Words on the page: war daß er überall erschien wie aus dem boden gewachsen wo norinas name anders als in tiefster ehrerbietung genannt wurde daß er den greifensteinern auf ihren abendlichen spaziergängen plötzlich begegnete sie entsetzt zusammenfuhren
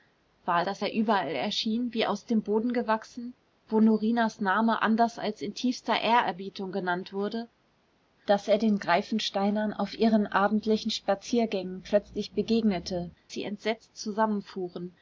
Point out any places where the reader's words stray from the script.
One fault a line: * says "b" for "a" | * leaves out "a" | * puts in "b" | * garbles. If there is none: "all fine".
all fine